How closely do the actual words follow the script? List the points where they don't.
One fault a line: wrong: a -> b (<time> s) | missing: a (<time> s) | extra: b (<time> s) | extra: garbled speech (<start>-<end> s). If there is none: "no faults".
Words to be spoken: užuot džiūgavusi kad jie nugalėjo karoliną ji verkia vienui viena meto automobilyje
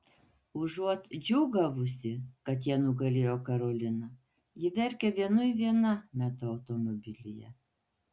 no faults